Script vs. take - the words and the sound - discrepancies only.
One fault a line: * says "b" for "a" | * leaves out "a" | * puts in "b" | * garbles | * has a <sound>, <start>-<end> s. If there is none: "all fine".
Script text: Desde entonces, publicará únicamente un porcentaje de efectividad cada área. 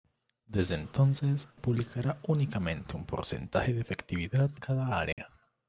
* has a dropout, 5.1-5.2 s